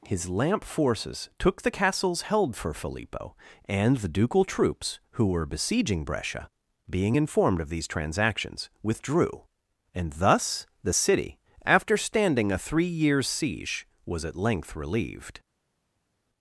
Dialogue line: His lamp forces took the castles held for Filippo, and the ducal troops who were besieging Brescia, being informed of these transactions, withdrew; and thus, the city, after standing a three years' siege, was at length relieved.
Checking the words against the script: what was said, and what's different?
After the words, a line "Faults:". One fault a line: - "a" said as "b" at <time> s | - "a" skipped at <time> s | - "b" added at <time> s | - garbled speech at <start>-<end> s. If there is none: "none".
His lamp forces took the castles held for Filippo, and the ducal troops who were besieging Brescia, being informed of these transactions, withdrew; and thus, the city, after standing a three years' siege, was at length relieved.
Faults:
none